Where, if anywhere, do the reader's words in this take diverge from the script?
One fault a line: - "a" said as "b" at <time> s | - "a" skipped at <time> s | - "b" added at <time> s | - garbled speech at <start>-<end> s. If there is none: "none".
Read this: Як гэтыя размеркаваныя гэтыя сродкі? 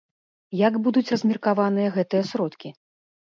- "гэтыя" said as "будуць" at 0.9 s